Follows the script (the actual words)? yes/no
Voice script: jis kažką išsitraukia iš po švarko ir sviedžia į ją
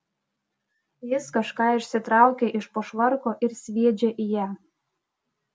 yes